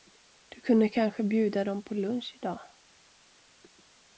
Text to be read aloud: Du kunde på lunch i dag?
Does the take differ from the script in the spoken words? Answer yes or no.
yes